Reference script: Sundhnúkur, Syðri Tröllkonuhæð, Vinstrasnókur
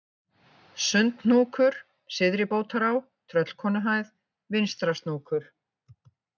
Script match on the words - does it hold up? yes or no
no